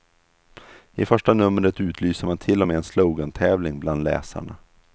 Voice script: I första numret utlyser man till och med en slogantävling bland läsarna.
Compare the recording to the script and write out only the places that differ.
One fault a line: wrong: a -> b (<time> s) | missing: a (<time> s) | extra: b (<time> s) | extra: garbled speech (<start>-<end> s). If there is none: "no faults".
no faults